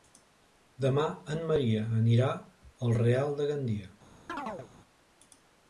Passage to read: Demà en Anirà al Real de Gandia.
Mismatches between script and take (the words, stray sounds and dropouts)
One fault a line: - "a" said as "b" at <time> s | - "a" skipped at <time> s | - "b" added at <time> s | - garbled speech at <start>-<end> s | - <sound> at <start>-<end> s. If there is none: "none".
- "Maria" added at 1.5 s
- chirp at 4.3-4.7 s